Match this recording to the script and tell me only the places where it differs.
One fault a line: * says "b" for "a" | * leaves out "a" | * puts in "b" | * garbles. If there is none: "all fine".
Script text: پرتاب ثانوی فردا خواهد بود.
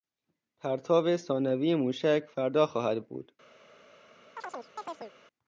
* puts in "موشک"